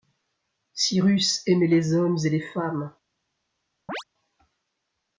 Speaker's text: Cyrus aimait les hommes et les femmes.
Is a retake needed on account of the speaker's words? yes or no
no